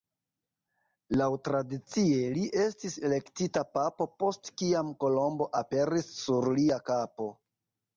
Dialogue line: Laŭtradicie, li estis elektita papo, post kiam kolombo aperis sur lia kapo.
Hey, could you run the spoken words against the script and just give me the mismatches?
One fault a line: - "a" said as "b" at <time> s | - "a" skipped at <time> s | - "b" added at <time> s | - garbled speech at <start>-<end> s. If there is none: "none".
none